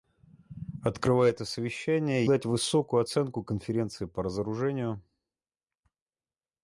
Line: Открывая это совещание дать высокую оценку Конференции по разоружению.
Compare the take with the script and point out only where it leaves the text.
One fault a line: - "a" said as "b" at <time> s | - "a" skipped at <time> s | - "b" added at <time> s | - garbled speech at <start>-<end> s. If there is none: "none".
none